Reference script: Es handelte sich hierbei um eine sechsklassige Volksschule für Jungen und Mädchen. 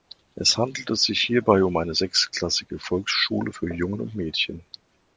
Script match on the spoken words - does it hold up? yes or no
yes